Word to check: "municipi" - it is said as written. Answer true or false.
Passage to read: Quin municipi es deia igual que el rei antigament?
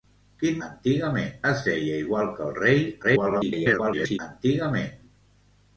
false